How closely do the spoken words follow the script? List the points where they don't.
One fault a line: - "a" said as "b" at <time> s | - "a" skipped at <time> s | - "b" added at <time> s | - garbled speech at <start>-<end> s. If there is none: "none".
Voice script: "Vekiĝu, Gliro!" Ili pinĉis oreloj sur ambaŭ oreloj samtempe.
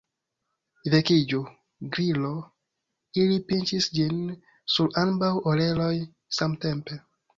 - "oreloj" said as "ĝin" at 4.0 s